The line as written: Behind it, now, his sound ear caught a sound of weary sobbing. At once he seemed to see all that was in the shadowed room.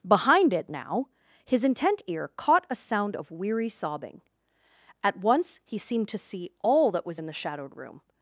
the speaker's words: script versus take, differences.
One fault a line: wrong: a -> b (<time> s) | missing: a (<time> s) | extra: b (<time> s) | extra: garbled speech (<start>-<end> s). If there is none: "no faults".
wrong: sound -> intent (1.6 s)